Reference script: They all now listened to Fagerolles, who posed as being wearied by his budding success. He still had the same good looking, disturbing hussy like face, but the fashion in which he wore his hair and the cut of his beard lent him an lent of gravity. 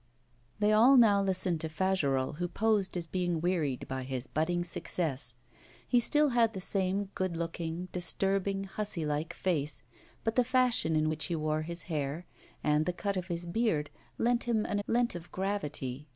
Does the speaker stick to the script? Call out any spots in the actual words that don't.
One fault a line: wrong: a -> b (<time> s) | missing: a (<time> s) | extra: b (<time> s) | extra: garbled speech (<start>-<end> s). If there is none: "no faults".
no faults